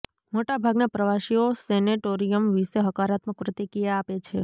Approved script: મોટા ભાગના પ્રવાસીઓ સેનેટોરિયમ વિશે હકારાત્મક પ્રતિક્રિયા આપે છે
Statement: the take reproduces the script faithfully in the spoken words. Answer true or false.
true